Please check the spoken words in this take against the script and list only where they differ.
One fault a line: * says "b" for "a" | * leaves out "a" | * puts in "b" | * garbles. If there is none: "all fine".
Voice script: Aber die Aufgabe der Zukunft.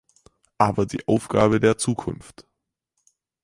all fine